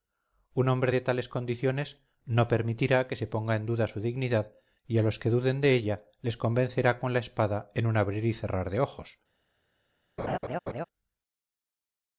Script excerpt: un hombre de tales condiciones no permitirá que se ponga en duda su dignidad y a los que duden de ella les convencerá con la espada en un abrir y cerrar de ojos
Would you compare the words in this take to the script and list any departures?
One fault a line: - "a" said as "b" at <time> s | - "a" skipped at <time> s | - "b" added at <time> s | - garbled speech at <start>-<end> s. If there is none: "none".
none